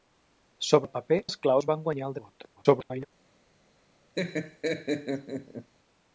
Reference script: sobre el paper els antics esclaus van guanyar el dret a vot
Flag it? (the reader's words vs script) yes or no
yes